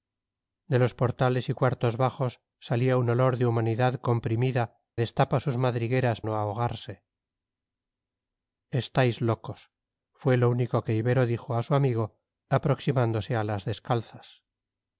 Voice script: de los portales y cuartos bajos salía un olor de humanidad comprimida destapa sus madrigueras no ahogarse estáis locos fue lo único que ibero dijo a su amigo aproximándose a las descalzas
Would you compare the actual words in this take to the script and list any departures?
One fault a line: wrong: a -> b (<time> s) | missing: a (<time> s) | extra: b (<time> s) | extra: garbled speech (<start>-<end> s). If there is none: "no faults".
no faults